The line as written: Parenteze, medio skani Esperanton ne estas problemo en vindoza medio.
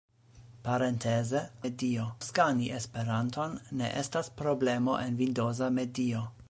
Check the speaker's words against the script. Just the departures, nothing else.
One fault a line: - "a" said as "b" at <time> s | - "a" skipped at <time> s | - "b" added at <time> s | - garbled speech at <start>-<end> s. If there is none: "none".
none